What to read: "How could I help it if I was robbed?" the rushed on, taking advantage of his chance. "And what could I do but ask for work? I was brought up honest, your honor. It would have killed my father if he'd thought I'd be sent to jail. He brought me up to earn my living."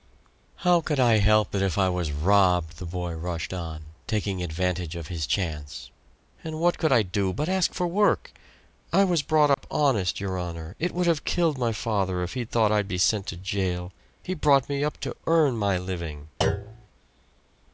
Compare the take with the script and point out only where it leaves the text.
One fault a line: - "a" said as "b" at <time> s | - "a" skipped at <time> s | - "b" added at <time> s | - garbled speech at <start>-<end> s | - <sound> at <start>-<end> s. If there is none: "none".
- "boy" added at 2.9 s
- dropout at 9.5-9.6 s
- thud at 16.4-16.9 s